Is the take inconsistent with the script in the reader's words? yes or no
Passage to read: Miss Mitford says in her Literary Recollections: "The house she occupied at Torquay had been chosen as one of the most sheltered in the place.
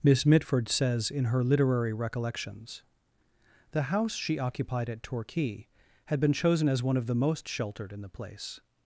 no